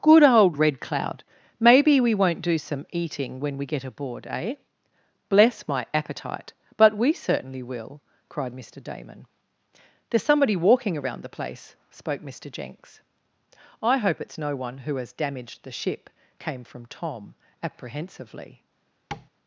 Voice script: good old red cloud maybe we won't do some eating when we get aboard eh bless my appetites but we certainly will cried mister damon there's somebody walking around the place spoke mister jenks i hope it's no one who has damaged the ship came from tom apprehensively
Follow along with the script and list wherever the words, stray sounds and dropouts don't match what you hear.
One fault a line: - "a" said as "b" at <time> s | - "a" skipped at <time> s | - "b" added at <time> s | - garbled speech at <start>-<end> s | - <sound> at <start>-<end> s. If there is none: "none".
- "appetites" said as "appetite" at 5.9 s
- tap at 19.1-19.3 s